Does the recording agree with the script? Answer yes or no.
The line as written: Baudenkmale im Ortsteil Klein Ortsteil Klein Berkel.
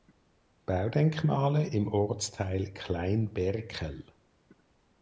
no